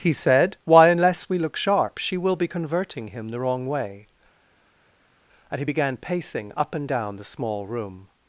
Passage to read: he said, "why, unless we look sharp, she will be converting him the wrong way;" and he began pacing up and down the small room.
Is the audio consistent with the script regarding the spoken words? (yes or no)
yes